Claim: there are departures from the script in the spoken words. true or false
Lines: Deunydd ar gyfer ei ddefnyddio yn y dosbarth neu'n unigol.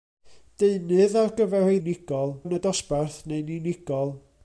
true